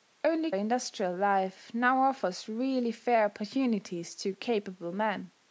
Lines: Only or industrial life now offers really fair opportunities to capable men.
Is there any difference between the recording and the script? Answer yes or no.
no